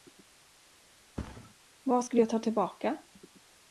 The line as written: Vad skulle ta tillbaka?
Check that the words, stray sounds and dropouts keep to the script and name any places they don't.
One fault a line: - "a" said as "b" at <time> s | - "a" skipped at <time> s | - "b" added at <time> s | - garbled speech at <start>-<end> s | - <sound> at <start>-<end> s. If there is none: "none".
- thud at 1.2-1.5 s
- "jag" added at 2.2 s